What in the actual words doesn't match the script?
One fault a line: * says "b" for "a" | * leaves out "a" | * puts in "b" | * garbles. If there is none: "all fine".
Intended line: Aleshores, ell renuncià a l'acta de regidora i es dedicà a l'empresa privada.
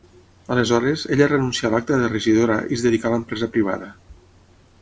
* says "ella" for "ell"